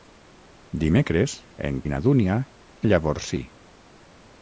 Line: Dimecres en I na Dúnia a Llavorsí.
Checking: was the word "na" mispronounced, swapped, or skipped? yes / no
no